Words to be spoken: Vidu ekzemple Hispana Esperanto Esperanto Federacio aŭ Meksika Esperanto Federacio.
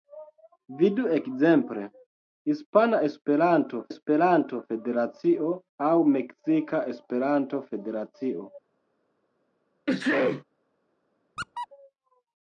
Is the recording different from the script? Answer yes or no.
no